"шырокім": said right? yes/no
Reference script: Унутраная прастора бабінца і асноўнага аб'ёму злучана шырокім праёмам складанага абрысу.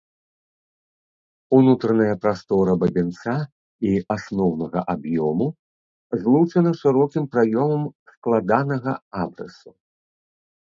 yes